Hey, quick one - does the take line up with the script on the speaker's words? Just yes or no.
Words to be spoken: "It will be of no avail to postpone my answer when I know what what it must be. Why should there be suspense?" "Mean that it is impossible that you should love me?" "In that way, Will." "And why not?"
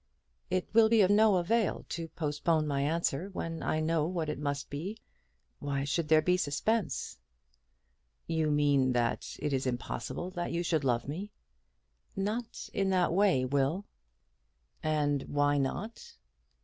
no